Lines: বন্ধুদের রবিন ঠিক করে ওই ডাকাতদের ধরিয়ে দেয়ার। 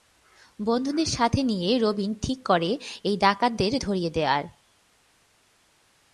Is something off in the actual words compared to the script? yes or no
yes